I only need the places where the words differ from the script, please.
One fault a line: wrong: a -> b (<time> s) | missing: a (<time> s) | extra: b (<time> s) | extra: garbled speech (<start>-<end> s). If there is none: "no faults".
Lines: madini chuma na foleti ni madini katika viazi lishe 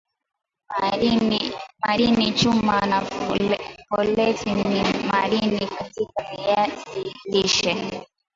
no faults